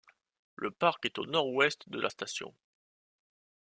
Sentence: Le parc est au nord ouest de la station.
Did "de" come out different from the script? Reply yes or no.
no